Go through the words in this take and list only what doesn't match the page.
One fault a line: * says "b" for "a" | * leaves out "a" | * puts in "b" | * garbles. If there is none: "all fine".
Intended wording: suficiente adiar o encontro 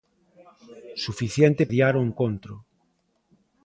all fine